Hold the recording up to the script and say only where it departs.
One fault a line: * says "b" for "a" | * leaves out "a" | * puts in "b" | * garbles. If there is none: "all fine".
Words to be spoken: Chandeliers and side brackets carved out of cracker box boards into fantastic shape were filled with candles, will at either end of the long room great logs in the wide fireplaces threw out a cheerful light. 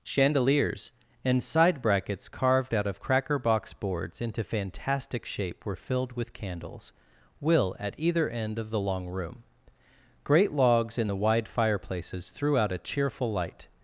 all fine